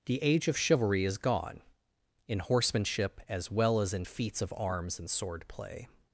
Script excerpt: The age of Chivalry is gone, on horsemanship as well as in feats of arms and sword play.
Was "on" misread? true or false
true